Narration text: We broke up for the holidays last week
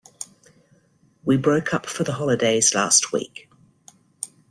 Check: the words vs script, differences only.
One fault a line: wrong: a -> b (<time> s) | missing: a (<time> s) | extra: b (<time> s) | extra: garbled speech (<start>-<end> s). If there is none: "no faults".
no faults